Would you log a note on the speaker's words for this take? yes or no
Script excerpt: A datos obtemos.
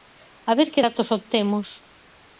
yes